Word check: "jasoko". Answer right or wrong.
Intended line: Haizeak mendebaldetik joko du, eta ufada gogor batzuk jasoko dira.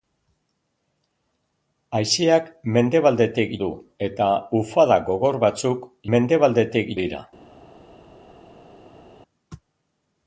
wrong